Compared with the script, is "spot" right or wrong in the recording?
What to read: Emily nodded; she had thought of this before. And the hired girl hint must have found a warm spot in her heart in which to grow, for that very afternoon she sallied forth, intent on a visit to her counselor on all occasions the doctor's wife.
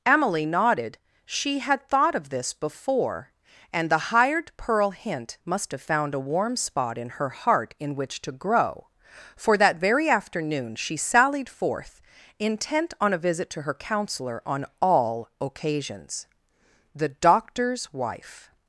right